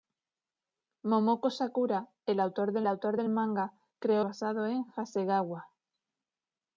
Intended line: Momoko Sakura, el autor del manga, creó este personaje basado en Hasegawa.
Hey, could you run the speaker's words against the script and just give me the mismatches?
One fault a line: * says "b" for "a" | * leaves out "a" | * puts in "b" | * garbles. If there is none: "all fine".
* puts in "autor del"
* leaves out "este personaje"